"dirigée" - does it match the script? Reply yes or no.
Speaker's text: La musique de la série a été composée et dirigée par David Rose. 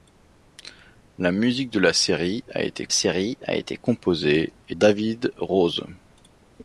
no